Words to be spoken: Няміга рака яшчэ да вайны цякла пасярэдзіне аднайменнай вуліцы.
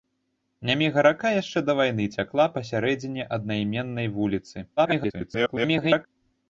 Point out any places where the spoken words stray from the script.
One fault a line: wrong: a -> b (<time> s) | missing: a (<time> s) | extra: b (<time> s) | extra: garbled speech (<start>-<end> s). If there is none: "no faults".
extra: garbled speech (4.8-6.1 s)